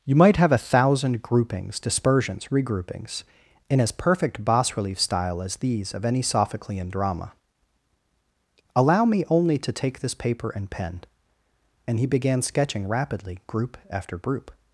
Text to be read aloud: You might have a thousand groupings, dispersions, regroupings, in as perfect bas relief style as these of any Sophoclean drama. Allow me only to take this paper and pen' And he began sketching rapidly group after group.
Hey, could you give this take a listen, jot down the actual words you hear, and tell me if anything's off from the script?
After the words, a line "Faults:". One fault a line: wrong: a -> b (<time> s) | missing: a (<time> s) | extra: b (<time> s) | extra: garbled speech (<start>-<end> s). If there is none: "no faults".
You might have a thousand groupings, dispersions, regroupings, in as perfect bas relief style as these of any Sophoclean drama. Allow me only to take this paper and pen' And he began sketching rapidly group after group.
Faults:
no faults